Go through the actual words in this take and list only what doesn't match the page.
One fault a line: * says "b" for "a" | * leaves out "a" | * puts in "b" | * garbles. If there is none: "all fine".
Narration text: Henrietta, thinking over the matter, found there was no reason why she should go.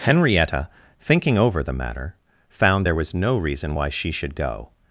all fine